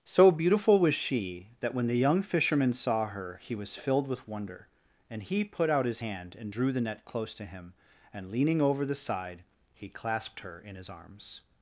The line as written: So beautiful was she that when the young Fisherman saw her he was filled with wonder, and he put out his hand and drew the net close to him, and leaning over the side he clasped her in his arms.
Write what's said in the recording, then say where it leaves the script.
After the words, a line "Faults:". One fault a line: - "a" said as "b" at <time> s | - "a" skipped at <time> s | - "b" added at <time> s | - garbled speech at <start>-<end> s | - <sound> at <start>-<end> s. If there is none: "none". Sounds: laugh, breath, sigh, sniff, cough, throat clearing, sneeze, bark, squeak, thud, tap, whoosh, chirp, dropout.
So beautiful was she that when the young Fisherman saw her he was filled with wonder, and he put out his hand and drew the net close to him, and leaning over the side he clasped her in his arms.
Faults:
none